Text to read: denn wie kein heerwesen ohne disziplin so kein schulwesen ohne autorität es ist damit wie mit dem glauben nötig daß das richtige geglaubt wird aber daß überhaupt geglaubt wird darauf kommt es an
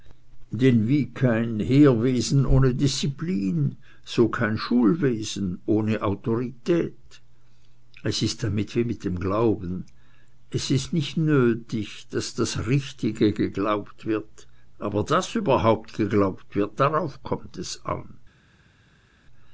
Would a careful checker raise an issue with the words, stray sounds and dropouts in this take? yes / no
yes